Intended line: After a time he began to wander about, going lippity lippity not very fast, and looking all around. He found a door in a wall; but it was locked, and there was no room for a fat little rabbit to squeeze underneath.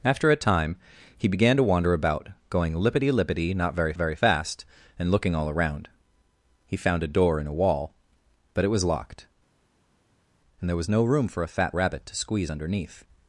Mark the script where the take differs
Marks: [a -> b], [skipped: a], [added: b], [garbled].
After a time he began to wander about, going lippity lippity not very [added: very] fast, and looking all around. He found a door in a wall; but it was locked, and there was no room for a fat [skipped: little] rabbit to squeeze underneath.